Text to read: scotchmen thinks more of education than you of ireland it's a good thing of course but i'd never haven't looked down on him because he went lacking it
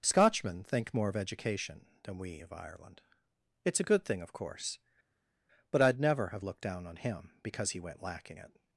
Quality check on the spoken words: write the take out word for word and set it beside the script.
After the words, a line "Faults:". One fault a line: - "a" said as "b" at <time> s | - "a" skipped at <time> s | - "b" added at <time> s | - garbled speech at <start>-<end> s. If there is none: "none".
scotchmen think more of education than we of ireland it's a good thing of course but i'd never have looked down on him because he went lacking it
Faults:
- "thinks" said as "think" at 0.6 s
- "you" said as "we" at 2.2 s
- "haven't" said as "have" at 6.3 s